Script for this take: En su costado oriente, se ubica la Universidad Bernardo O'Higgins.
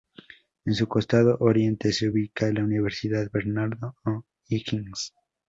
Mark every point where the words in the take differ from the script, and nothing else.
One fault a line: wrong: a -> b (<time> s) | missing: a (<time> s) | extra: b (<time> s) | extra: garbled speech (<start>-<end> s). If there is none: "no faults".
no faults